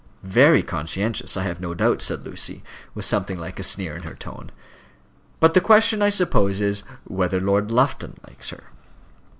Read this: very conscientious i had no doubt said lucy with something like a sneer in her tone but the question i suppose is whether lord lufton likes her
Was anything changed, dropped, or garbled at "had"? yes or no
yes